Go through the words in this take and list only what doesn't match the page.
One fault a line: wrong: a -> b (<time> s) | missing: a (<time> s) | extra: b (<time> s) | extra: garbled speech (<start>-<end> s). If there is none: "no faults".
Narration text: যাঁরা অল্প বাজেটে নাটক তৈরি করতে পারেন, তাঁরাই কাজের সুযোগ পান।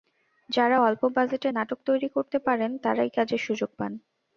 no faults